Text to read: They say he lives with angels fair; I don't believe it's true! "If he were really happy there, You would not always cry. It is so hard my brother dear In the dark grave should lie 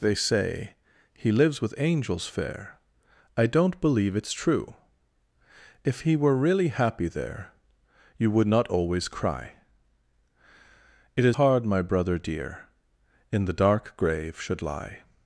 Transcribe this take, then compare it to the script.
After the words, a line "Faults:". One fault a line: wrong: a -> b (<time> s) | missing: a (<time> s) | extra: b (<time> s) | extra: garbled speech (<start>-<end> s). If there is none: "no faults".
They say he lives with angels fair; I don't believe it's true! "If he were really happy there, You would not always cry. It is hard my brother dear In the dark grave should lie
Faults:
missing: so (11.4 s)